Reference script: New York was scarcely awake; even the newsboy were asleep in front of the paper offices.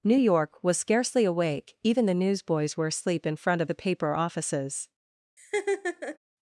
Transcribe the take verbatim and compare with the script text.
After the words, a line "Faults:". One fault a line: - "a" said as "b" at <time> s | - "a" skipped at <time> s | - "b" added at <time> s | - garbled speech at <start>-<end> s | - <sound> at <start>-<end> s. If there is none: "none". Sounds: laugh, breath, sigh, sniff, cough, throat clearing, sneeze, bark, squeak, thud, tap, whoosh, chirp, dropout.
New York was scarcely awake; even the newsboys were asleep in front of the paper offices.
Faults:
- "newsboy" said as "newsboys" at 2.1 s
- laugh at 5.4-6.2 s